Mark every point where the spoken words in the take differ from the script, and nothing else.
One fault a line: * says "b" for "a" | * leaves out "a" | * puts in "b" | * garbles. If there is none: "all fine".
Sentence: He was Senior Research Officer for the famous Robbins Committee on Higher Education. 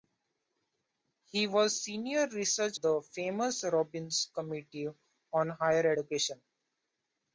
* leaves out "Officer for"